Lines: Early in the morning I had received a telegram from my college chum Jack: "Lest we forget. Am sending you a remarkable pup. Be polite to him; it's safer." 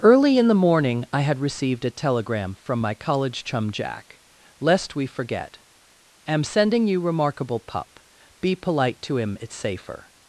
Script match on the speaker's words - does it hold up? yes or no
no